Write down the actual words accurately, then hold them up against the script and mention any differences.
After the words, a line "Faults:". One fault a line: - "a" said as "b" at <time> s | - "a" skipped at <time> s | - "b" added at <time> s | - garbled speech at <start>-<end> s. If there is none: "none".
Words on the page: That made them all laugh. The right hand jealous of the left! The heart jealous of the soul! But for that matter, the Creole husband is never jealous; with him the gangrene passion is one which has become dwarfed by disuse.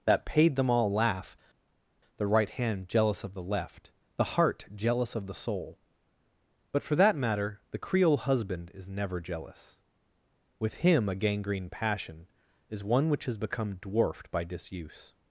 That paid them all laugh. The right hand jealous of the left! The heart jealous of the soul! But for that matter, the Creole husband is never jealous; with him a gangrene passion is one which has become dwarfed by disuse.
Faults:
- "made" said as "paid" at 0.2 s
- "the" said as "a" at 11.1 s